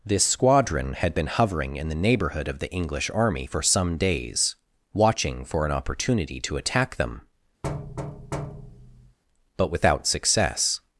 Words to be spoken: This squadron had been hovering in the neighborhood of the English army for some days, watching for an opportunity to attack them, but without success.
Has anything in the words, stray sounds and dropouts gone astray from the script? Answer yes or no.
yes